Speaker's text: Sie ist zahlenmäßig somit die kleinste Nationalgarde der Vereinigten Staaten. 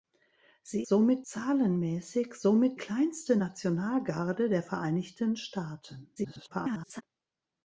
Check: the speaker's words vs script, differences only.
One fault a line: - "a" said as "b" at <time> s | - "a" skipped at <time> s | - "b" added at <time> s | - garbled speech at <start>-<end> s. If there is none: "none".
- "ist" said as "somit" at 0.8 s
- "die" skipped at 2.8 s
- garbled speech at 6.2-7.0 s